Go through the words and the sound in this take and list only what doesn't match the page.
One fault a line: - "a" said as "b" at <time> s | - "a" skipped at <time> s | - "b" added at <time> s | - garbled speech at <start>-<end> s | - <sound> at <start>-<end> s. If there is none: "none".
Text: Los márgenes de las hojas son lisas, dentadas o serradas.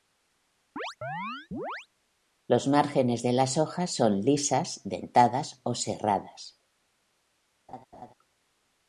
- chirp at 0.8-1.9 s
- laugh at 7.7-8.1 s